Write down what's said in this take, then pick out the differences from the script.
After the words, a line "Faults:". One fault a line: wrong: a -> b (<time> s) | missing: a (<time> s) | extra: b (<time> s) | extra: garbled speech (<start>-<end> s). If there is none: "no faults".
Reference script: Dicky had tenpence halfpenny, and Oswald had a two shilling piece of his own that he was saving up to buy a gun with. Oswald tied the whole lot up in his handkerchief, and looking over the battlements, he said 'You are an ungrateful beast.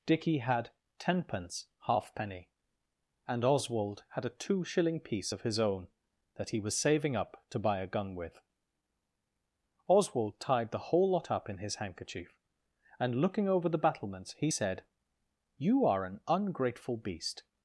Dicky had tenpence halfpenny, and Oswald had a two shilling piece of his own that he was saving up to buy a gun with. Oswald tied the whole lot up in his handkerchief, and looking over the battlements, he said 'You are an ungrateful beast.
Faults:
no faults